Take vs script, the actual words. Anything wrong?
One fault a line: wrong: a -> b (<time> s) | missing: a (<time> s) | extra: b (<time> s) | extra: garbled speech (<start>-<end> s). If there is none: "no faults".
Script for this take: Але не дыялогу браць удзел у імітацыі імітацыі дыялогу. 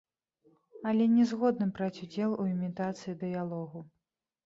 wrong: дыялогу -> згодны (1.3 s)
missing: імітацыі (3.2 s)